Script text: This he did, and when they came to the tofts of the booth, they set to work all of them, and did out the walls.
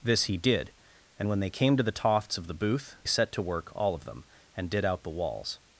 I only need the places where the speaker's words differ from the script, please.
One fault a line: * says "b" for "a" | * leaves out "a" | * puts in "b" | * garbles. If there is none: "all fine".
* leaves out "they"